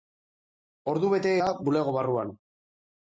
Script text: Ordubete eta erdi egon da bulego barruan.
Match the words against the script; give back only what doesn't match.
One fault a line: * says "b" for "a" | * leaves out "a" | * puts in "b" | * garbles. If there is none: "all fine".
* leaves out "eta erdi egon"